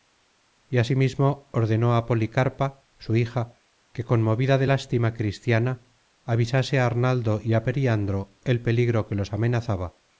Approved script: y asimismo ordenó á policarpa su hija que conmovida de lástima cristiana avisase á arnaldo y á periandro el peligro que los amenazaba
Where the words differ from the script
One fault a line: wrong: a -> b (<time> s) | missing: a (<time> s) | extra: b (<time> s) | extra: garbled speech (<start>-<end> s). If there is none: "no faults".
no faults